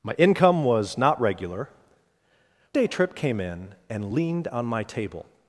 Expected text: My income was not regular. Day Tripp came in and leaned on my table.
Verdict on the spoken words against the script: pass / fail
pass